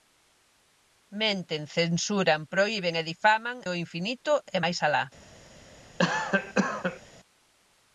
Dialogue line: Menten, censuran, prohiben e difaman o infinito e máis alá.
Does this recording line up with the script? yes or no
yes